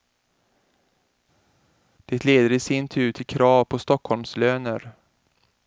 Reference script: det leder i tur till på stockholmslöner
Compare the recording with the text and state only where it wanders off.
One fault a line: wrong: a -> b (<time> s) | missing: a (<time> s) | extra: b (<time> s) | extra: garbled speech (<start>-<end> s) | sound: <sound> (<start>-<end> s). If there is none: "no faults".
extra: sin (2.6 s)
extra: krav (3.3 s)